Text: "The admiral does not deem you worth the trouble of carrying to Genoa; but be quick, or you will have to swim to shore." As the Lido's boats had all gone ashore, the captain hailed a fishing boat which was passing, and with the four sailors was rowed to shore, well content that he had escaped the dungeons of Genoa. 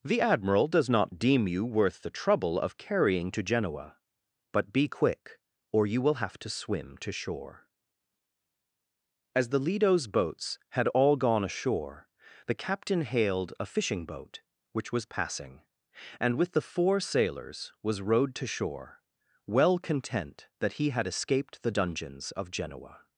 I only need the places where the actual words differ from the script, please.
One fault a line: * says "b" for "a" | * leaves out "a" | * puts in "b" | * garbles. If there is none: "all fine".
all fine